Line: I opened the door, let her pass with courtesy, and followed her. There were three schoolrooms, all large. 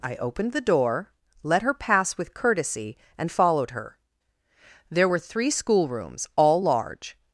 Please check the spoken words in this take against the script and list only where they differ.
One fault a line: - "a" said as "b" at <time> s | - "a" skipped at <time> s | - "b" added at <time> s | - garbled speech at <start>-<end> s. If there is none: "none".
none